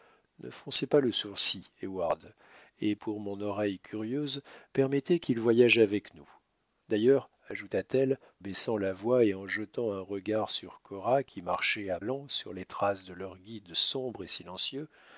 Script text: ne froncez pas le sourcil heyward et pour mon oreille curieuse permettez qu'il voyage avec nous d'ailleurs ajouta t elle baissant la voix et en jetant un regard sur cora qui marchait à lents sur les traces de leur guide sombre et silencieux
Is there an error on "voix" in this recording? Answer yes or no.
no